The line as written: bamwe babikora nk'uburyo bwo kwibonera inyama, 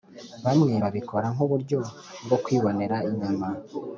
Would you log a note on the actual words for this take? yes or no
no